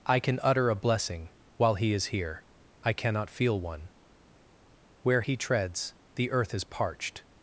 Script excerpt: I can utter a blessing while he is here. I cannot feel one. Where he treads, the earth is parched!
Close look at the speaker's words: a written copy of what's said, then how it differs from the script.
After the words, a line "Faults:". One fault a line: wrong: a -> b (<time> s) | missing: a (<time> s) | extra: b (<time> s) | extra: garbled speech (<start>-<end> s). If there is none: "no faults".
I can utter a blessing while he is here. I cannot feel one. Where he treads, the earth is parched!
Faults:
no faults